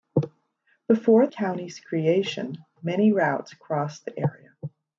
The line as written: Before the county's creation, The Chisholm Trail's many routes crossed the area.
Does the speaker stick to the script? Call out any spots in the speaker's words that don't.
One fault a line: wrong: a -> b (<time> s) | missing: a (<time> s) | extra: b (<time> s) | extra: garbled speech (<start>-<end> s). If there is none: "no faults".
missing: the (1.3 s)
missing: The Chisholm Trail's (2.6 s)